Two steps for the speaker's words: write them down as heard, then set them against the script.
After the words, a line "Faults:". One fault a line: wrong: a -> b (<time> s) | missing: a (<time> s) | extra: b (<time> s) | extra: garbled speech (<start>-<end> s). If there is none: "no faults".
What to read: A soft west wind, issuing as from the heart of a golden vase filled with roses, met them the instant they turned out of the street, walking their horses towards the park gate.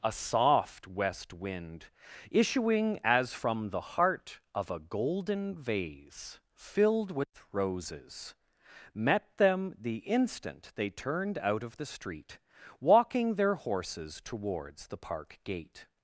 A soft west wind, issuing as from the heart of a golden vase filled with roses, met them the instant they turned out of the street, walking their horses towards the park gate.
Faults:
no faults